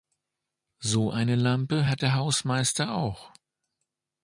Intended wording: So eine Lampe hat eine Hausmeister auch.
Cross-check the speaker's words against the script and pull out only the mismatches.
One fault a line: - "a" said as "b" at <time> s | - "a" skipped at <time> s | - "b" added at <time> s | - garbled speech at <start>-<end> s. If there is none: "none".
- "eine" said as "der" at 2.0 s